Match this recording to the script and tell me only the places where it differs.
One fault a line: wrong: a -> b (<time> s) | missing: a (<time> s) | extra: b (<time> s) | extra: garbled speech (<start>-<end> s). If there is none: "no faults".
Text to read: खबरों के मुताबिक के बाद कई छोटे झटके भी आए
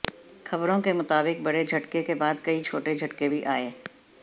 extra: बड़े झटके (1.4 s)